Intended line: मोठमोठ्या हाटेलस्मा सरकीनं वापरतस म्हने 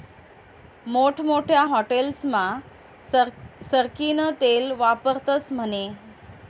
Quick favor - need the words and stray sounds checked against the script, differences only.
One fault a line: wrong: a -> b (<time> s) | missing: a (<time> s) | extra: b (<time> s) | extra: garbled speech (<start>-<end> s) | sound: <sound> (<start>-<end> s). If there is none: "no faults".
extra: तेल (4.4 s)